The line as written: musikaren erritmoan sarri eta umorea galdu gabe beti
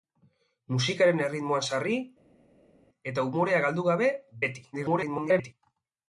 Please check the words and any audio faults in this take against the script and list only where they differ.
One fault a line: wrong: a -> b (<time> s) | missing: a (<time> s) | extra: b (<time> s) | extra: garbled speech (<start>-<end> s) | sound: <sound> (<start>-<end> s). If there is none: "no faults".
extra: garbled speech (4.7-5.5 s)